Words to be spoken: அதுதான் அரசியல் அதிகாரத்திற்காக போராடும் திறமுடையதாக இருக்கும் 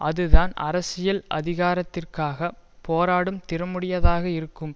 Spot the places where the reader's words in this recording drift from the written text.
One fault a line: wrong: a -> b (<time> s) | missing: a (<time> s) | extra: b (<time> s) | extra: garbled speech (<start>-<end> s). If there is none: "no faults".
no faults